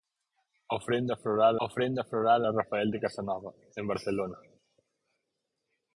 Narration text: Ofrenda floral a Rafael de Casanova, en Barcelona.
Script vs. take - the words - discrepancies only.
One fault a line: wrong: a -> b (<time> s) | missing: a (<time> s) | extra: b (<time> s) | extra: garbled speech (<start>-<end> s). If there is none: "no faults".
extra: ofrenda floral (1.7 s)